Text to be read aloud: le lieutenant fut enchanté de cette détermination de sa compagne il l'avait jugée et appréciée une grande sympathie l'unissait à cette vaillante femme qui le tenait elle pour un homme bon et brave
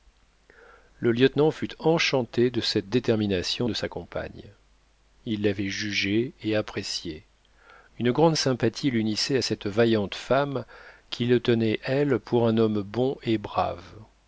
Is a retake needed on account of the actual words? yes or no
no